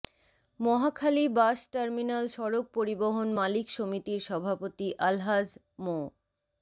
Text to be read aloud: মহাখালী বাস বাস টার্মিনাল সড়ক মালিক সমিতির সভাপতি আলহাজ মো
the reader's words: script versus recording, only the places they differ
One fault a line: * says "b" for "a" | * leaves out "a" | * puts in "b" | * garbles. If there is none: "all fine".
* leaves out "বাস"
* puts in "পরিবহন"